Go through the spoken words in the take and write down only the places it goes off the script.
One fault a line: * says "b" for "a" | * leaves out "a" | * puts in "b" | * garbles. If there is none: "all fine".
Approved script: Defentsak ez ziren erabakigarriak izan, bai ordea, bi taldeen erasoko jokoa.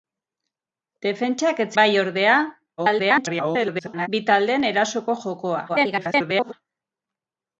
* leaves out "ziren erabakigarriak izan"
* garbles
* garbles